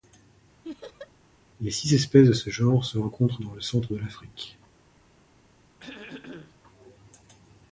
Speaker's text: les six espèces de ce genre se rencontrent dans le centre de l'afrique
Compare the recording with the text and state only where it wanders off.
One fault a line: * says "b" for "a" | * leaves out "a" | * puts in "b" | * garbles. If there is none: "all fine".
all fine